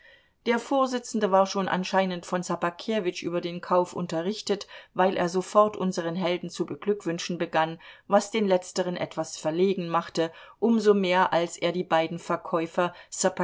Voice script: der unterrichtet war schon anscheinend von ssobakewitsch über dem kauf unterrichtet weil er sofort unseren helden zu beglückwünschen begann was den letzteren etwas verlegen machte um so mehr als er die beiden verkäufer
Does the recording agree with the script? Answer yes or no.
no